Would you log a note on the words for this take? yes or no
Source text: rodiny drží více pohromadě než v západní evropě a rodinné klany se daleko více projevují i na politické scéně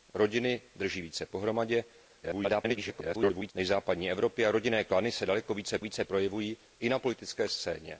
yes